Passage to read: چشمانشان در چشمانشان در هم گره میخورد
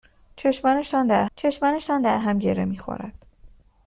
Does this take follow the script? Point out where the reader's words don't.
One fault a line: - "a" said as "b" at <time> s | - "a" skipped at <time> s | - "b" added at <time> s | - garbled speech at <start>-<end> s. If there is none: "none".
none